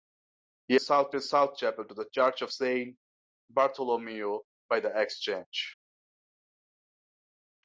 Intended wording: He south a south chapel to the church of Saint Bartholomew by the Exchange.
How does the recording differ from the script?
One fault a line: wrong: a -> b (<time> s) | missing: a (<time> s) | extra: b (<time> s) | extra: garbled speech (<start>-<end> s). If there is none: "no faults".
no faults